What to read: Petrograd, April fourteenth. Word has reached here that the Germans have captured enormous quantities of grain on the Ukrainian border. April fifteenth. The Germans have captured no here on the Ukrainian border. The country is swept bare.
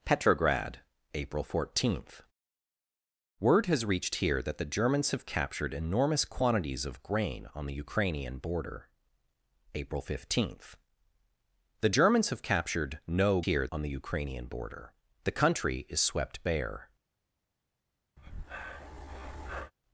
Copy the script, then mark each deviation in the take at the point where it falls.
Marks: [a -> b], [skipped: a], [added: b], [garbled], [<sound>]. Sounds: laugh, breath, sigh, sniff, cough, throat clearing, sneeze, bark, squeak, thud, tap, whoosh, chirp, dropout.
Petrograd, April fourteenth. Word has reached here that the Germans have captured enormous quantities of grain on the Ukrainian border. April fifteenth. The Germans have captured no here on the Ukrainian border. The country is swept bare. [breath]